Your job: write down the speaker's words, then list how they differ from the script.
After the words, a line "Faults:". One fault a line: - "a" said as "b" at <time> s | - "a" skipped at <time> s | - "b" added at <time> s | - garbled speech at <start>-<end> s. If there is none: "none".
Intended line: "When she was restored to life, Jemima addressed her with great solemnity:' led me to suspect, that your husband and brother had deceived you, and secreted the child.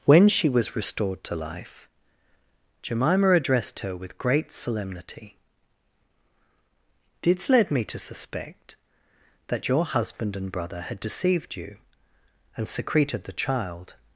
"When she was restored to life, Jemima addressed her with great solemnity:' didst led me to suspect, that your husband and brother had deceived you, and secreted the child.
Faults:
- "didst" added at 7.2 s